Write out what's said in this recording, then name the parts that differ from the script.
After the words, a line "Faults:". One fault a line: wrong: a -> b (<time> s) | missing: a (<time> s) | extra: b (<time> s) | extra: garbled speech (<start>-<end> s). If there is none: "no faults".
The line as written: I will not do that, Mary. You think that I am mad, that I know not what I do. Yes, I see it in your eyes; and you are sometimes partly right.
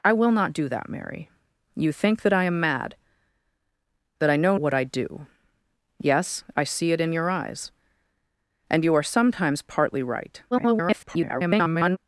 I will not do that, Mary. You think that I am mad, that I know what I do. Yes, I see it in your eyes; and you are sometimes partly right. [garbled]
Faults:
missing: not (4.6 s)
extra: garbled speech (10.5-12.0 s)